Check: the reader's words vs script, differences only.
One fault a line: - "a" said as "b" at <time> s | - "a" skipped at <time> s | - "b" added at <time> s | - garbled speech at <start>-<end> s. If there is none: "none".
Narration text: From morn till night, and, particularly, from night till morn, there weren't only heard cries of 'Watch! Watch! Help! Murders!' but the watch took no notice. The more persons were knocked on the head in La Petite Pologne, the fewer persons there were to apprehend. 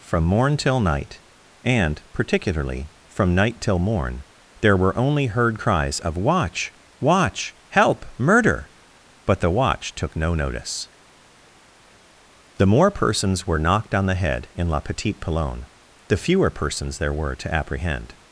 - "weren't" said as "were" at 4.8 s
- "Murders" said as "Murder" at 8.2 s